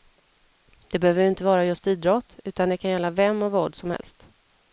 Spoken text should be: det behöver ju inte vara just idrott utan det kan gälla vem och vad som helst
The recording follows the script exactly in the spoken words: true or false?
true